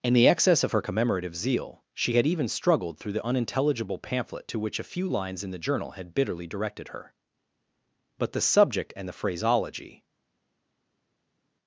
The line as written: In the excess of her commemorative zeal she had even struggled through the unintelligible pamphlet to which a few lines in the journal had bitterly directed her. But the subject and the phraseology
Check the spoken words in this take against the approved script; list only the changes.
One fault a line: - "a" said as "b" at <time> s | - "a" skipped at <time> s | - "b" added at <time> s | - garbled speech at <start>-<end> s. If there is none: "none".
none